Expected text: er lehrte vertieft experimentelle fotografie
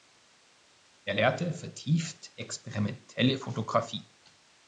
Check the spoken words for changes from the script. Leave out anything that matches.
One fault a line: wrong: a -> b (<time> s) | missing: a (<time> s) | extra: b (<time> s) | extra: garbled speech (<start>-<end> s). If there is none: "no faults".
no faults